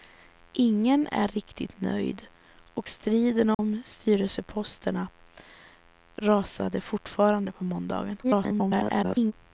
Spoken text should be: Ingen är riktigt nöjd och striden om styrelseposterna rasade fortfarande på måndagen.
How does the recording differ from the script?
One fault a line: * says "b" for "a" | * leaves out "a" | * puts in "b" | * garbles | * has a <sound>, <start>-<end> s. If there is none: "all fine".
* has a dropout, 3.5-3.6 s
* garbles